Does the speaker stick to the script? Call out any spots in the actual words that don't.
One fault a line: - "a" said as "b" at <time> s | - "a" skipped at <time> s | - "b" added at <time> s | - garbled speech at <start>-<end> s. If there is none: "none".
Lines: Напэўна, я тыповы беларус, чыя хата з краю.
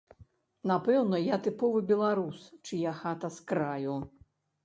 none